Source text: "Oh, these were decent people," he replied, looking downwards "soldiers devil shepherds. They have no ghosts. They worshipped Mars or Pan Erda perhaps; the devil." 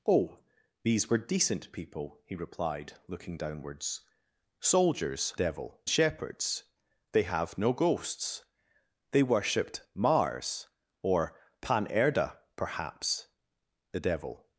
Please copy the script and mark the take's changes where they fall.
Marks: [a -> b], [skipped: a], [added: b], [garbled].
"Oh, these were decent people," he replied, looking downwards "soldiers devil shepherds. They have no ghosts. They worshipped Mars or Pan Erda perhaps; the devil."